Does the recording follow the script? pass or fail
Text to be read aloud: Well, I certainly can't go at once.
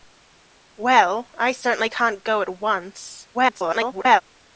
fail